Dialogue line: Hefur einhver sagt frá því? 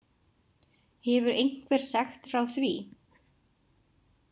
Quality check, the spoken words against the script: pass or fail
pass